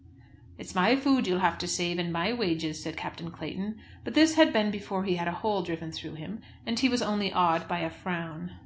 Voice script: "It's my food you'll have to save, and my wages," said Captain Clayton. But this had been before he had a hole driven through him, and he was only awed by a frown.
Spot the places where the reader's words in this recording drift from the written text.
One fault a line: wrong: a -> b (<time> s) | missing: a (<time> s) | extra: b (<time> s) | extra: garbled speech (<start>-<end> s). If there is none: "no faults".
no faults